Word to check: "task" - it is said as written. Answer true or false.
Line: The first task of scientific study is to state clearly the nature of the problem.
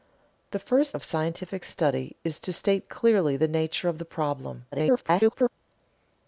false